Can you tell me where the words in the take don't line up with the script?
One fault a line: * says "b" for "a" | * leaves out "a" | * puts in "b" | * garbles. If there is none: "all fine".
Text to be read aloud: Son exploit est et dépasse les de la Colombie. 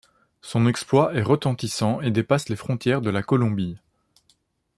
* puts in "retentissant"
* puts in "frontières"